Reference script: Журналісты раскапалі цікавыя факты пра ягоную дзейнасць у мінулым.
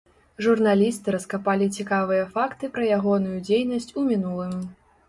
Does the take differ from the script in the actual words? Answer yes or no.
no